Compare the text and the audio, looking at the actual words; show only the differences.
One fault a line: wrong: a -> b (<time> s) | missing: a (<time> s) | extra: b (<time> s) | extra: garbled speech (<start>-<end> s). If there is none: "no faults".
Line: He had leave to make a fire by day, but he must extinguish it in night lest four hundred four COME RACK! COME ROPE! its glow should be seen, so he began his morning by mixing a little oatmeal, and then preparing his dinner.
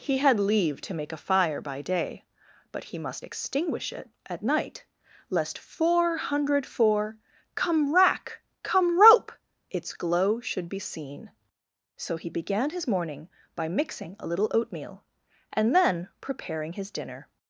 wrong: in -> at (4.3 s)